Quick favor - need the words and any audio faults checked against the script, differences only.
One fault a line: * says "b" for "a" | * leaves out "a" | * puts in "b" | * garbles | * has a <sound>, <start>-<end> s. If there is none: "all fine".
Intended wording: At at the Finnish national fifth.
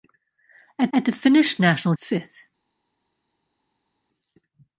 all fine